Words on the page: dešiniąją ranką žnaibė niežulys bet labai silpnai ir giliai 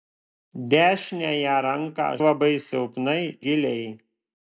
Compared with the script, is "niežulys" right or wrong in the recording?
wrong